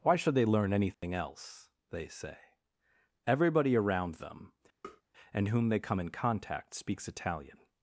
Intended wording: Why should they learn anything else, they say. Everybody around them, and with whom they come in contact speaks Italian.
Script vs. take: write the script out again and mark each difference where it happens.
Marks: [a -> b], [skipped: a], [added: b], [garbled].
Why should they learn anything else, they say. Everybody around them, and [skipped: with] whom they come in contact speaks Italian.